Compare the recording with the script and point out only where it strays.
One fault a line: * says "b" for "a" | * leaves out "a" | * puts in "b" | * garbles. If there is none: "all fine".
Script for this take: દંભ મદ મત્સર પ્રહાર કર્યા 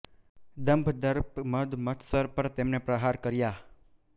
* puts in "દર્પ"
* puts in "પર તેમણે"